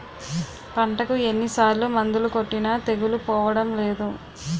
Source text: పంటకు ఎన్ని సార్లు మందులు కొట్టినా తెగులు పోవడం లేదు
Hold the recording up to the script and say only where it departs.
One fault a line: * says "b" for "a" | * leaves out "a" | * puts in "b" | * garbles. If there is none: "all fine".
all fine